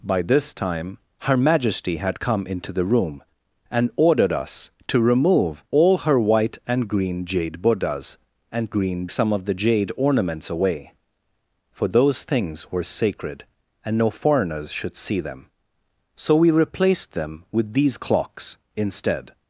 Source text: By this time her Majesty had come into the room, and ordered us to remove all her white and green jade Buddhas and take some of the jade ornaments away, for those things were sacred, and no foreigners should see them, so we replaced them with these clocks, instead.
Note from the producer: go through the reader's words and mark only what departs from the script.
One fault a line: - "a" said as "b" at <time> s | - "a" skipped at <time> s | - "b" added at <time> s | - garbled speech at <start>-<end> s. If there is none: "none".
- "take" said as "green" at 8.7 s